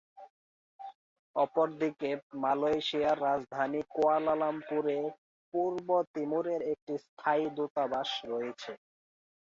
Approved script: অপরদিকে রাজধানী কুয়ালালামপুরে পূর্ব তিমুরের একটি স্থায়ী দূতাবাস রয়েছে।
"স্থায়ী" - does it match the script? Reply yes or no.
yes